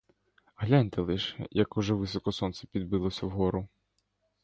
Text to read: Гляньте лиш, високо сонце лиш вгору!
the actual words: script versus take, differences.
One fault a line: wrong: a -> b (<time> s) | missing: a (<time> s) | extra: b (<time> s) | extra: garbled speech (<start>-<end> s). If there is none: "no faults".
extra: як уже (1.5 s)
wrong: лиш -> підбилося (2.7 s)